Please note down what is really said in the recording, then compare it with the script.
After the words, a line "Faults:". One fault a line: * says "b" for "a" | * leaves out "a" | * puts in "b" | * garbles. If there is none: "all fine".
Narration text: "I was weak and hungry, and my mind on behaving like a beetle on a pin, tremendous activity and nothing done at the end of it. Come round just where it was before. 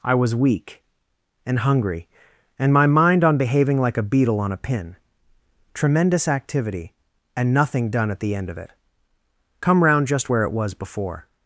"I was weak and hungry, and my mind on behaving like a beetle on a pin, tremendous activity and nothing done at the end of it. Come round just where it was before.
Faults:
all fine